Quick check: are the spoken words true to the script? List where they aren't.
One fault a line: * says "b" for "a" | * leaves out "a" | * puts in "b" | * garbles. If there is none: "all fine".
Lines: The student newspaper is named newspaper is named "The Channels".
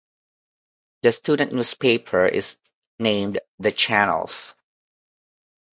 * leaves out "newspaper is named"